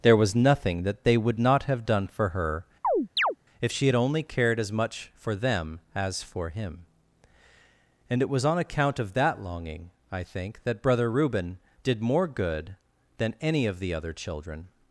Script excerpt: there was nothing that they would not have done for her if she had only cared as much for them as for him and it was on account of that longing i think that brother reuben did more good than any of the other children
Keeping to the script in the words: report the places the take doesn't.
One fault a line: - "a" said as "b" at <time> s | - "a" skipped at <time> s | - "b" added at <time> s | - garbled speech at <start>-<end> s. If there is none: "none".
none